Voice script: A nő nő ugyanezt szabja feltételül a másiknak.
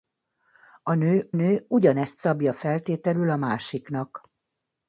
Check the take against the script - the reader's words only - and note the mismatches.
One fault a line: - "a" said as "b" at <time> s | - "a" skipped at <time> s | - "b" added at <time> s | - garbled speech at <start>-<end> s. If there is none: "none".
none